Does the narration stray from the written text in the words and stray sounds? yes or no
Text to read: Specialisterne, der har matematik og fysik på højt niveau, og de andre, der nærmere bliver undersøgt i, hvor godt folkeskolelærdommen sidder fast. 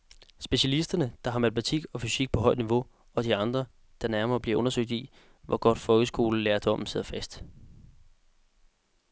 no